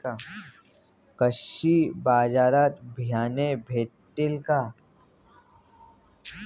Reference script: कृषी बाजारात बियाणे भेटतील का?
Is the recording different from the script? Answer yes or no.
no